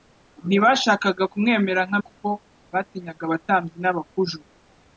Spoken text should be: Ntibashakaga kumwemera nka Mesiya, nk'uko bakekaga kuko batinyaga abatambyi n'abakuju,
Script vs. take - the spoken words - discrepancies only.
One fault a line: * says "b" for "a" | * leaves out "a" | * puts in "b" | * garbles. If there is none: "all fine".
* leaves out "Mesiya nk'uko bakekaga"